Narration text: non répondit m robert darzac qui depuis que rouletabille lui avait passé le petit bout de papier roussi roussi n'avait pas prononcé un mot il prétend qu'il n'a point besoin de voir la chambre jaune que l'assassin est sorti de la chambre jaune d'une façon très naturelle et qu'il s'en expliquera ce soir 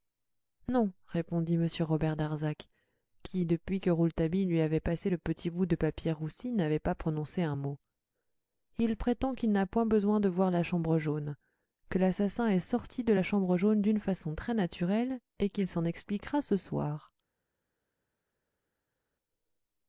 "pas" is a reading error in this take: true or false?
false